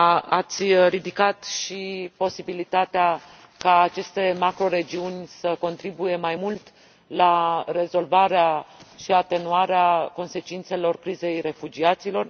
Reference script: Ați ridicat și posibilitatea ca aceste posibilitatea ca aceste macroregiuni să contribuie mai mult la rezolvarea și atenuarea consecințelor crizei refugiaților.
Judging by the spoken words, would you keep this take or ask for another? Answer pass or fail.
fail